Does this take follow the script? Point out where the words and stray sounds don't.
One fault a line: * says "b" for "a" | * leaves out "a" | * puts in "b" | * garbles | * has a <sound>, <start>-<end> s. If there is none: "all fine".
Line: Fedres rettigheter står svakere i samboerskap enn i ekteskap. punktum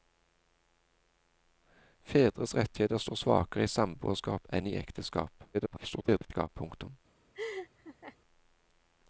* garbles
* has a laugh, 7.3-8.2 s